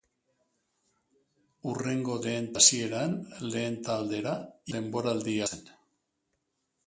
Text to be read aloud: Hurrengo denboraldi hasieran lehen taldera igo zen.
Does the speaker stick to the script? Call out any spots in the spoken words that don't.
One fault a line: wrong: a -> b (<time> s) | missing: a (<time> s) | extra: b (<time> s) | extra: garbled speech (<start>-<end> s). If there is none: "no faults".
wrong: denboraldi -> lehen (2.2 s)
wrong: igo -> denboraldi (4.7 s)